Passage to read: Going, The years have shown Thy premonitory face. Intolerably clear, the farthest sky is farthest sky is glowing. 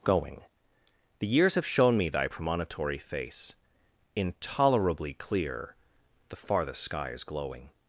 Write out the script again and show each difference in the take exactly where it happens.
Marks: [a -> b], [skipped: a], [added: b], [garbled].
Going, The years have shown [added: me] Thy premonitory face. Intolerably clear, the farthest sky is [skipped: farthest sky is] glowing.